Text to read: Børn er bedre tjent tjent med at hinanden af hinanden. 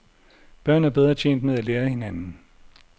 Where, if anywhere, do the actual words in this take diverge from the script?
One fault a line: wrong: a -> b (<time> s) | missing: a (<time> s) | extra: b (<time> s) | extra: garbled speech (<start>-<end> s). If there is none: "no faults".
missing: tjent (1.4 s)
wrong: hinanden -> lære (1.6 s)